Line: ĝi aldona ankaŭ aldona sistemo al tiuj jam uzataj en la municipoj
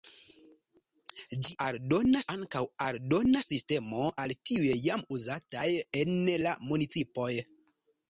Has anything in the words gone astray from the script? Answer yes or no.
no